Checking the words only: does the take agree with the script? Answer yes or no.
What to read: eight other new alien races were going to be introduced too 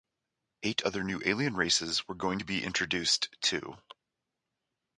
yes